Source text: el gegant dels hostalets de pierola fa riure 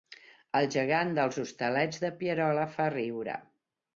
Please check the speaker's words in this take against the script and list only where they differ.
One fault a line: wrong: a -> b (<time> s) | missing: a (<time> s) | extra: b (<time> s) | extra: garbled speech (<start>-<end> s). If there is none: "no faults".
no faults